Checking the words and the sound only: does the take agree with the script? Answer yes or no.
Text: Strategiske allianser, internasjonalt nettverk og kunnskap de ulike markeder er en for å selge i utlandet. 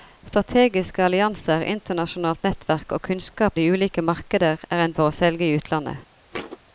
no